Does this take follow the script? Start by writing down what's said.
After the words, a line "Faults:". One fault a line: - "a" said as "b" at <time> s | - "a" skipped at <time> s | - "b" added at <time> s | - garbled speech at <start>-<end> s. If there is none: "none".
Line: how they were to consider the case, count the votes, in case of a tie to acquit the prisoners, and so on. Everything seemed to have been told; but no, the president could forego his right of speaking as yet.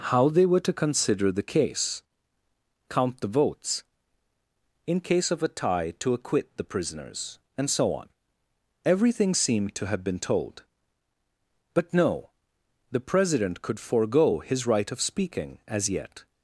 how they were to consider the case, count the votes, in case of a tie to acquit the prisoners, and so on. Everything seemed to have been told; but no, the president could forego his right of speaking as yet.
Faults:
none